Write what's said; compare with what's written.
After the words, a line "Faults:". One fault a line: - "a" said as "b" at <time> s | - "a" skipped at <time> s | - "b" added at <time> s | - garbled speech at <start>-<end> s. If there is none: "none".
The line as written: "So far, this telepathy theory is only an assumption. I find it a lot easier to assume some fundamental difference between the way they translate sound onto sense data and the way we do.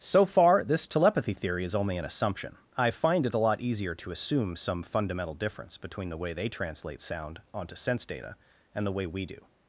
"So far, this telepathy theory is only an assumption. I find it a lot easier to assume some fundamental difference between the way they translate sound onto sense data and the way we do.
Faults:
none